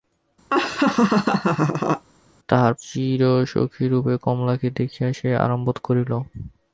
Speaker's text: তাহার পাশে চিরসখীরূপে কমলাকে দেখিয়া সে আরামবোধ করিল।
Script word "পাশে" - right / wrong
wrong